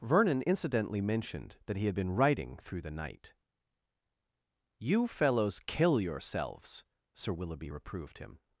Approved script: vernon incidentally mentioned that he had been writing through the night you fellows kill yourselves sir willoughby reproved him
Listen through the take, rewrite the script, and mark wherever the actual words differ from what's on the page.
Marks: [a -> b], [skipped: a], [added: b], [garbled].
vernon incidentally mentioned that he had been writing through the night you fellows kill yourselves sir willoughby reproved him